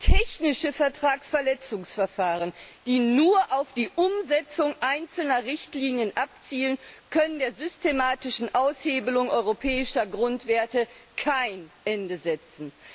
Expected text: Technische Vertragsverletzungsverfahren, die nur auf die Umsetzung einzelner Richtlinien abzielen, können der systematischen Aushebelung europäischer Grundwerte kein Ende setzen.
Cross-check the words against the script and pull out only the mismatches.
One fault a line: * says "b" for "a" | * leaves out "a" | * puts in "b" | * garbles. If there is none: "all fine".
all fine